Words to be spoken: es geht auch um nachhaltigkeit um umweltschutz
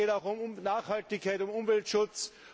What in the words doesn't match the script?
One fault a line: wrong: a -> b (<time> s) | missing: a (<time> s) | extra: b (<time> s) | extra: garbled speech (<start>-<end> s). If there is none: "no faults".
no faults